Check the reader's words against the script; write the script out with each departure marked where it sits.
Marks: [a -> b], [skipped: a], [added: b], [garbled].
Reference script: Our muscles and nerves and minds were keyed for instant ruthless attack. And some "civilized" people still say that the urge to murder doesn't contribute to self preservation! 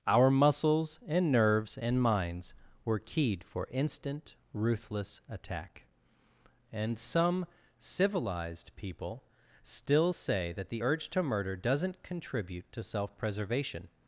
Our muscles and nerves and minds were keyed for instant ruthless attack. And some "civilized" people still say that the urge to murder doesn't contribute to self preservation!